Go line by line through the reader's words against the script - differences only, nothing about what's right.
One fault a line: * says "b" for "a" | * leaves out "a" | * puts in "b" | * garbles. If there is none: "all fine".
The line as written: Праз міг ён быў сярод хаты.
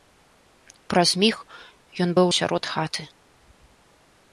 all fine